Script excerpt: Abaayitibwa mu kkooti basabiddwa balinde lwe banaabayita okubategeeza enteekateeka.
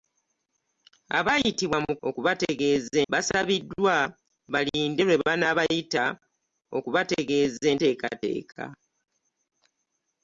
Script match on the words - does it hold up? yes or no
no